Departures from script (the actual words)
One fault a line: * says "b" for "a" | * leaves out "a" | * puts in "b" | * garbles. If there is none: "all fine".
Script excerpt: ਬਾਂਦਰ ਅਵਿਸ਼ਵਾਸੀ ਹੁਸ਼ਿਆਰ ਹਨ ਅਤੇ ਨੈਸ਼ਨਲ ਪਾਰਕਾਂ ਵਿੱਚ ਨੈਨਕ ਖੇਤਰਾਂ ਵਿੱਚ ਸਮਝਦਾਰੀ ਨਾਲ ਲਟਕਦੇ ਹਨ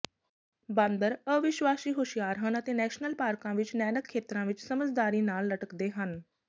all fine